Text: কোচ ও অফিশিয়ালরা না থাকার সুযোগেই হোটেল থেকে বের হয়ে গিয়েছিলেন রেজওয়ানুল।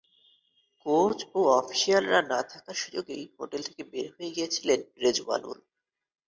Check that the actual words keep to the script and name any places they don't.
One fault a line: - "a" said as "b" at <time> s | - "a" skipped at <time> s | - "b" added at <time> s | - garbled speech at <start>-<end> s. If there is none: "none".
none